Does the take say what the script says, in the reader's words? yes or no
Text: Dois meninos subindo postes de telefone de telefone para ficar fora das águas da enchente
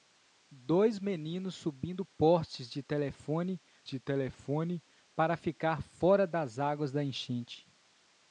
yes